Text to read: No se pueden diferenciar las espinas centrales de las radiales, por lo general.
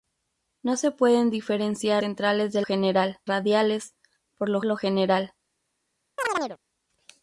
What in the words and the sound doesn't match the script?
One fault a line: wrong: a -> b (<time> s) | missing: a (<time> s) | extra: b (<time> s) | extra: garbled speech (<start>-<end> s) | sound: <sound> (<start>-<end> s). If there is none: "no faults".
missing: las espinas (2.0 s)
wrong: las -> general (2.6 s)
extra: lo (4.6 s)
sound: chirp (6.2-6.6 s)